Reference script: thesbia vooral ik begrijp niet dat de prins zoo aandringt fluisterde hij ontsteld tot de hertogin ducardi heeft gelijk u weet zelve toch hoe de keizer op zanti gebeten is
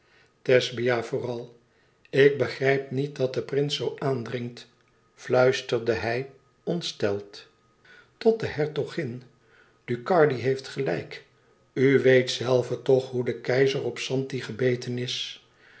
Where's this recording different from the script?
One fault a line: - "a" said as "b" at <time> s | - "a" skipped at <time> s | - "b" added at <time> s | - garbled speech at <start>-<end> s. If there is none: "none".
none